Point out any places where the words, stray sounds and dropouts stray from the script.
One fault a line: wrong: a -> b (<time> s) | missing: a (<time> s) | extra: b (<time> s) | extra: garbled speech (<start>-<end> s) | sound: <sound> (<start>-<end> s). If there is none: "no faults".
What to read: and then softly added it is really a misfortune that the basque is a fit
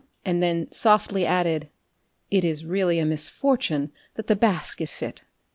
no faults